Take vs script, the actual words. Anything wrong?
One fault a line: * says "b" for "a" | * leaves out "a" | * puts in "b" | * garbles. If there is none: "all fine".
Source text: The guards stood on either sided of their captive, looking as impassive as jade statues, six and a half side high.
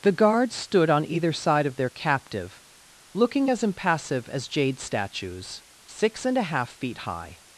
* says "side" for "sided"
* says "feet" for "side"